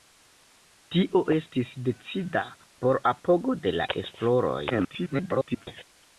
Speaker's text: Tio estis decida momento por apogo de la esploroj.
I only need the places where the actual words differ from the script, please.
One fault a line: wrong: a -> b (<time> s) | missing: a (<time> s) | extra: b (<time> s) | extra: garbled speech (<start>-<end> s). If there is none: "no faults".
missing: momento (2.4 s)
extra: garbled speech (4.7-5.7 s)